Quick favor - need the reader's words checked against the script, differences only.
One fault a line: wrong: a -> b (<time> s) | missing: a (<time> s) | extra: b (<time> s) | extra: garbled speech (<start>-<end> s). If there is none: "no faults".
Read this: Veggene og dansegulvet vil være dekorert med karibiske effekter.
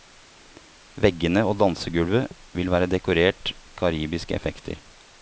missing: med (3.5 s)